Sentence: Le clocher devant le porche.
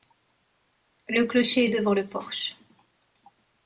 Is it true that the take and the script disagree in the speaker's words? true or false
false